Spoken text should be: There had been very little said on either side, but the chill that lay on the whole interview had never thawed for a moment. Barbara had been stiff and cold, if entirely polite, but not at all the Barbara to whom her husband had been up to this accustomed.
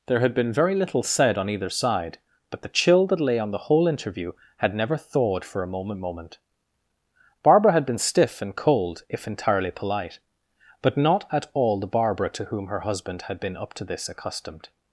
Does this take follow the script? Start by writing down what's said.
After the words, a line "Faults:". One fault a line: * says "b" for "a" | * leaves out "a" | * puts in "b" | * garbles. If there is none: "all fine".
There had been very little said on either side, but the chill that lay on the whole interview had never thawed for a moment moment. Barbara had been stiff and cold, if entirely polite, but not at all the Barbara to whom her husband had been up to this accustomed.
Faults:
* puts in "moment"